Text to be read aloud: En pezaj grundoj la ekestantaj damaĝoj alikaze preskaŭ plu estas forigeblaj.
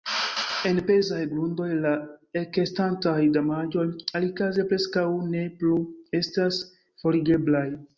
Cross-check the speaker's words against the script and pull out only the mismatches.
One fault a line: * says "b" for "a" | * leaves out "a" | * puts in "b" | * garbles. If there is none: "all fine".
* puts in "ne"